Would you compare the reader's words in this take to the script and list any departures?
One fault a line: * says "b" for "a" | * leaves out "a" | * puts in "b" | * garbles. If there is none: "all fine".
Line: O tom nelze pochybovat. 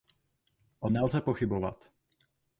* leaves out "tom"